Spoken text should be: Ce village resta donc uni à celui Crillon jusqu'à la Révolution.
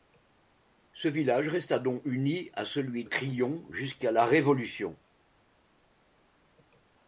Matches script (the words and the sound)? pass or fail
pass